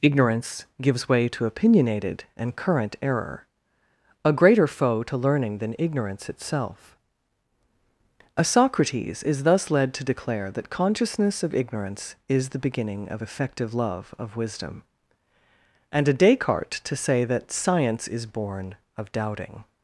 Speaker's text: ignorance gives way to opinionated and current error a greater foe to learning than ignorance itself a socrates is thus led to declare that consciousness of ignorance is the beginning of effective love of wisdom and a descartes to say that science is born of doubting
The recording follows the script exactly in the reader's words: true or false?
true